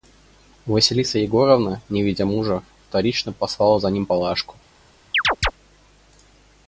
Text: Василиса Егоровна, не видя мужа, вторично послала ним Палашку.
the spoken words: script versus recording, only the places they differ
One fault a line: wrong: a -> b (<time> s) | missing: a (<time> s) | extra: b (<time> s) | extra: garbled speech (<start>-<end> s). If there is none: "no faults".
extra: за (3.8 s)